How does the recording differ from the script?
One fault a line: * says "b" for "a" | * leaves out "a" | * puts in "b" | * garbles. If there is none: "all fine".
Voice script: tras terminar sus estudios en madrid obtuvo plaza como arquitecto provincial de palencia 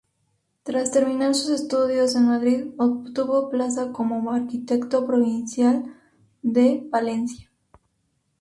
all fine